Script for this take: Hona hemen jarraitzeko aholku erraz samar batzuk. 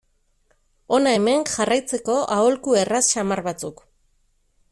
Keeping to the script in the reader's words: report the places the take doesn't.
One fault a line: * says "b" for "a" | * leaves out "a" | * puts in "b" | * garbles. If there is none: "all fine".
all fine